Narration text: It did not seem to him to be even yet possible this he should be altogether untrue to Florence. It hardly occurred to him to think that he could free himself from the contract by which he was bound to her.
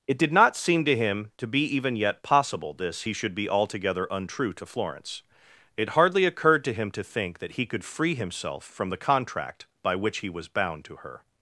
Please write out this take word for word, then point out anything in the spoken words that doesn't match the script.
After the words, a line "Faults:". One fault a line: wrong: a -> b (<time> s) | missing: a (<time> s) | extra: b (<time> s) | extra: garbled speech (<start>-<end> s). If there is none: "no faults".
It did not seem to him to be even yet possible this he should be altogether untrue to Florence. It hardly occurred to him to think that he could free himself from the contract by which he was bound to her.
Faults:
no faults